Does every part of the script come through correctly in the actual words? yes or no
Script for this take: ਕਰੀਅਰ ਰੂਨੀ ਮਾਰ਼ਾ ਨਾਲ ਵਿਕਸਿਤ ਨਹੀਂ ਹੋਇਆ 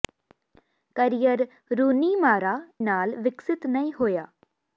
yes